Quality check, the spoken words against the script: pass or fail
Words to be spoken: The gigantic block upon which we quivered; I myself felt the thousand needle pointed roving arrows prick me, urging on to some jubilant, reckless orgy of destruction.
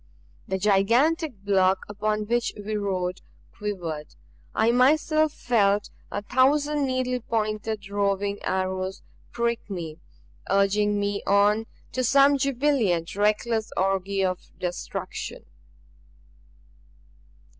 fail